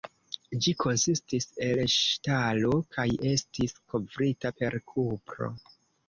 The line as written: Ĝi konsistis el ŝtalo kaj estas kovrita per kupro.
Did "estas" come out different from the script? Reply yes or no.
yes